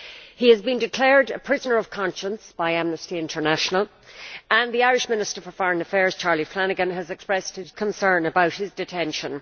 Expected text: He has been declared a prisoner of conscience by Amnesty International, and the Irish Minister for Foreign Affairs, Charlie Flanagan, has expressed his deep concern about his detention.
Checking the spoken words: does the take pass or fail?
fail